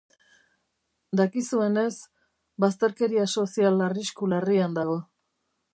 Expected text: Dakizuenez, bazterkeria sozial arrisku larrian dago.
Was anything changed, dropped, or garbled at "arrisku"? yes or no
no